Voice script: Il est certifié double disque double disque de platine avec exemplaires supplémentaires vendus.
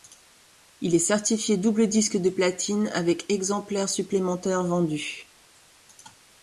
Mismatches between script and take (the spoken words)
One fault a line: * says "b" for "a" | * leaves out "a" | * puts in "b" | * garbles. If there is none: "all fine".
* leaves out "double disque"